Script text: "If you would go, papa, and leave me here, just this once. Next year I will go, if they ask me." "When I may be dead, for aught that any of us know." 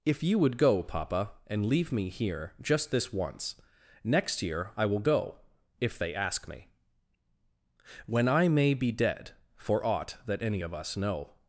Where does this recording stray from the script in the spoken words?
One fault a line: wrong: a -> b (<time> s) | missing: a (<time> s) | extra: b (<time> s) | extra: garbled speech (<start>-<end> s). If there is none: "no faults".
no faults